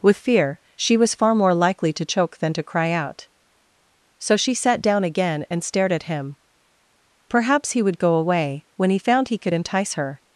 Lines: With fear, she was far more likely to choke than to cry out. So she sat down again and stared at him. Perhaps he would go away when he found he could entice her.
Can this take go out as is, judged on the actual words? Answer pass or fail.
pass